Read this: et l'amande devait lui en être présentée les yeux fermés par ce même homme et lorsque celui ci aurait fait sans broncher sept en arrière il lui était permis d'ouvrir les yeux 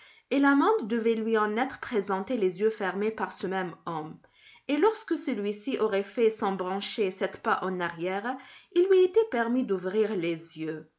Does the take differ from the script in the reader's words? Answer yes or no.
yes